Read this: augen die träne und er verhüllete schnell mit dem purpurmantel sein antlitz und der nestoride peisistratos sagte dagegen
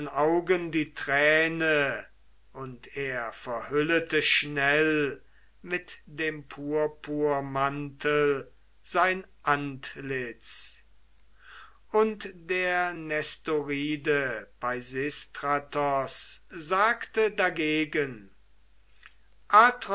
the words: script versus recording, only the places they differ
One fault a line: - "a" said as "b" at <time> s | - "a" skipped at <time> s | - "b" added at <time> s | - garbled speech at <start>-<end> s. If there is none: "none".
none